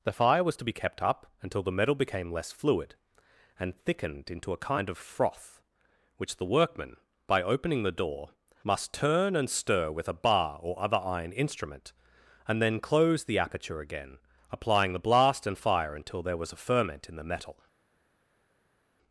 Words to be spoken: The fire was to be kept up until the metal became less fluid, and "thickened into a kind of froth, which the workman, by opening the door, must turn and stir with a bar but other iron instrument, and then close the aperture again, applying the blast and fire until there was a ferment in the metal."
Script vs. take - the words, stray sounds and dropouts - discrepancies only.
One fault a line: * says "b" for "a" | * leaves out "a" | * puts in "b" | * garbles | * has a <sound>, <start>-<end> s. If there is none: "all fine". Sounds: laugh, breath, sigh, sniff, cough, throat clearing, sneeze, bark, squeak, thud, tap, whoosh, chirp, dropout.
* says "or" for "but"